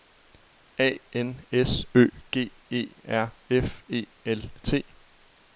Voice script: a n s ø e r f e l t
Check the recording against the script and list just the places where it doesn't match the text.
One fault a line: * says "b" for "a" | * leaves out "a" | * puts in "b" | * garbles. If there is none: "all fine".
* puts in "g"